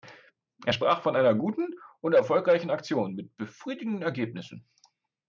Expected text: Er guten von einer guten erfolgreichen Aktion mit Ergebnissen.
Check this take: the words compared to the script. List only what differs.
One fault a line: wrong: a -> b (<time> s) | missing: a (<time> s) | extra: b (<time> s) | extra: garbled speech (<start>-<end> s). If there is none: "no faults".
wrong: guten -> sprach (0.7 s)
extra: und (2.0 s)
extra: befriedigenden (3.4 s)